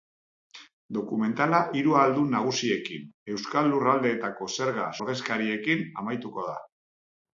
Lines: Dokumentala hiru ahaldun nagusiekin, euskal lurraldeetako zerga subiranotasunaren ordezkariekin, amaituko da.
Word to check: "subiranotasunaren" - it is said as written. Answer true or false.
false